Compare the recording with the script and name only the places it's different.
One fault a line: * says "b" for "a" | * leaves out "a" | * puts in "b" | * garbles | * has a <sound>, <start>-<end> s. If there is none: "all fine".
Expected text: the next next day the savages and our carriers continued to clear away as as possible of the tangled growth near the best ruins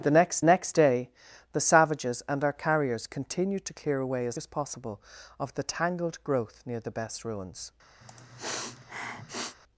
* has a sniff, 8.0-9.6 s